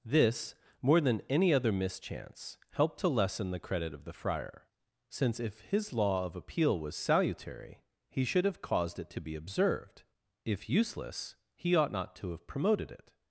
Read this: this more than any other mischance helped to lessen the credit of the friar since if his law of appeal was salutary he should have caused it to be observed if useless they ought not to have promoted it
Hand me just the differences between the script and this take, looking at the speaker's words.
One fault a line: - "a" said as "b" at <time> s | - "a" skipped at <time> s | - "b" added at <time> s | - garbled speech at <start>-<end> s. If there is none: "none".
- "they" said as "he" at 11.6 s